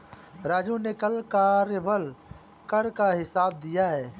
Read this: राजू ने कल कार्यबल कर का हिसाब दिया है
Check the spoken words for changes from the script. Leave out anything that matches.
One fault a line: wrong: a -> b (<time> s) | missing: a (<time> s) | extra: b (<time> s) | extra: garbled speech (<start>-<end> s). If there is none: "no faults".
no faults